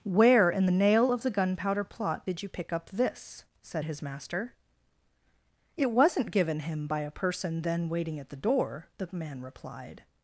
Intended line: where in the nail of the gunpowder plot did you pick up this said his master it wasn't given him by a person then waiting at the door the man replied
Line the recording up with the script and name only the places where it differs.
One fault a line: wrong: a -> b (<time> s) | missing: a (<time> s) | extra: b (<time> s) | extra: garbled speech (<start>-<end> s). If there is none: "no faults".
no faults